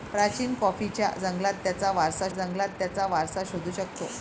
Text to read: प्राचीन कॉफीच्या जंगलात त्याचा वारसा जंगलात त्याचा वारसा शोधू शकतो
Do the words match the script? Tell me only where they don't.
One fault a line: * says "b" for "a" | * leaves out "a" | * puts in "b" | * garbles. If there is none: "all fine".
all fine